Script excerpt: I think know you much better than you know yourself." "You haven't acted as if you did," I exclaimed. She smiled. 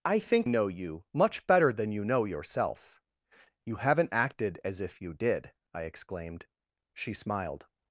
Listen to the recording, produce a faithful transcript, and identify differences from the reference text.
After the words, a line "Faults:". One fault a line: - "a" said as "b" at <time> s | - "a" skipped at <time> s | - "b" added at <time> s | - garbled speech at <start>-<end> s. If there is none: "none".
I think know you much better than you know yourself." "You haven't acted as if you did," I exclaimed. She smiled.
Faults:
none